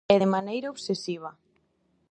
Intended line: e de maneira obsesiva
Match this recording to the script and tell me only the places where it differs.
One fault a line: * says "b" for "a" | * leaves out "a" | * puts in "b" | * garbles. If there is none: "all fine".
all fine